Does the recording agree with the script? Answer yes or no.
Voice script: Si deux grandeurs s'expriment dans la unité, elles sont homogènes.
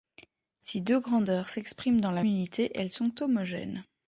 yes